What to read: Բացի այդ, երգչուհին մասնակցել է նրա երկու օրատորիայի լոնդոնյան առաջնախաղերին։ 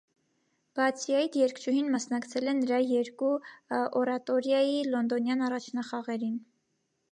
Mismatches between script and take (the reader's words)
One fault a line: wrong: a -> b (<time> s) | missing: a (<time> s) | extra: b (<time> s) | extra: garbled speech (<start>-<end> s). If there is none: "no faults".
no faults